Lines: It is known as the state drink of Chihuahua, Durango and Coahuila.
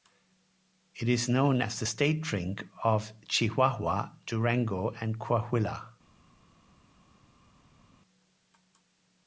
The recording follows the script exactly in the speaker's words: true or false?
true